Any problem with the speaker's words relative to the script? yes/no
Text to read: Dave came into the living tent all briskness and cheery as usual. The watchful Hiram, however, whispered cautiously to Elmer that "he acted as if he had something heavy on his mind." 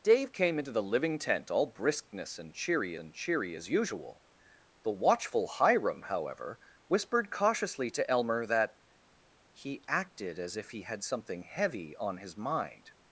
yes